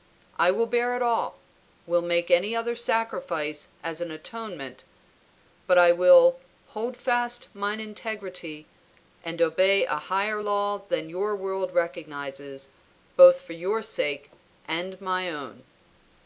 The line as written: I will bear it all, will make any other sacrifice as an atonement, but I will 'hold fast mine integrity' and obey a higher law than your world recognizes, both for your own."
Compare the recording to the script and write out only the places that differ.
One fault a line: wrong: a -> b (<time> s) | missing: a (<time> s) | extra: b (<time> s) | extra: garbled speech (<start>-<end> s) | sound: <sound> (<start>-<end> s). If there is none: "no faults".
extra: sake and my (13.8 s)